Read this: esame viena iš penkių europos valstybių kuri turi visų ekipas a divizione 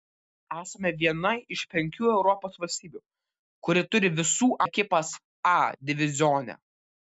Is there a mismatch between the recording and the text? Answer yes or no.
no